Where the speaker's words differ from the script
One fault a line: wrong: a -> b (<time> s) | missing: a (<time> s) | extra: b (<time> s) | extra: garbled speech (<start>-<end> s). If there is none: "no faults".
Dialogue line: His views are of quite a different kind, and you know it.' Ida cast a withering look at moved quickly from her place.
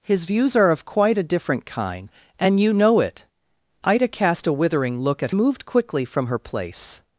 no faults